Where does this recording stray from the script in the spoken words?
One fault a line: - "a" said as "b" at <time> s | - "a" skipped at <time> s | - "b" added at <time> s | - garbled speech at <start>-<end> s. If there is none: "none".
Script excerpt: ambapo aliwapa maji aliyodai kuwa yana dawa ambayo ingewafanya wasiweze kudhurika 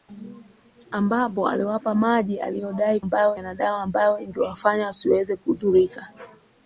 - "kuwa" said as "ambayo" at 3.0 s